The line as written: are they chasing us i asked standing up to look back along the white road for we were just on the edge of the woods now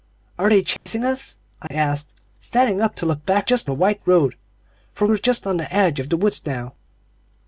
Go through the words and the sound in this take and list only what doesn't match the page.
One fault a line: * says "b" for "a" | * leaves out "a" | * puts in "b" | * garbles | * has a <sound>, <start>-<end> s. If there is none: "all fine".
* has a dropout, 0.8-0.9 s
* has a dropout, 1.7-1.7 s
* says "just" for "along"
* leaves out "we"